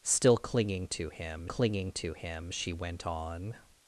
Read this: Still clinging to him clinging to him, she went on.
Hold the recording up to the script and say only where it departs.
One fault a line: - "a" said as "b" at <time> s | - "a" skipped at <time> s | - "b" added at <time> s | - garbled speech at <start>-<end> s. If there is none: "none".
none